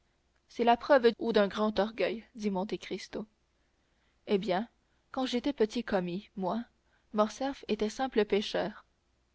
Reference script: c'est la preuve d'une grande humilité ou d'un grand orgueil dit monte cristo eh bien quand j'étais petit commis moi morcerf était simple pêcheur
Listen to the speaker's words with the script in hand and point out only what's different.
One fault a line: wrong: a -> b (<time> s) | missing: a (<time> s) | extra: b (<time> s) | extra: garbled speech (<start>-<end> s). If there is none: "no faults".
missing: d'une grande humilité (1.1 s)